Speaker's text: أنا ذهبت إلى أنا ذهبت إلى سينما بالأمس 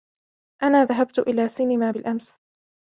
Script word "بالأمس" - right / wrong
right